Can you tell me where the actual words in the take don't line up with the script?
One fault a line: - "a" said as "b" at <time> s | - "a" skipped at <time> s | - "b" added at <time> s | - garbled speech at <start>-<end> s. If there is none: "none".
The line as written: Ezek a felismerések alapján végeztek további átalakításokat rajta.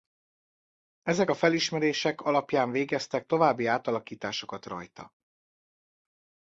none